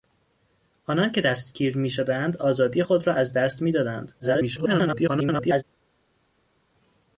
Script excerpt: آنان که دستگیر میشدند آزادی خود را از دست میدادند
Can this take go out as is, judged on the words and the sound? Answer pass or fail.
fail